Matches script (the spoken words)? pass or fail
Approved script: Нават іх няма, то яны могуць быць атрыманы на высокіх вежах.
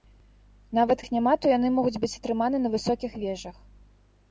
pass